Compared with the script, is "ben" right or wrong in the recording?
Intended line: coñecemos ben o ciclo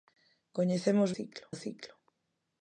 wrong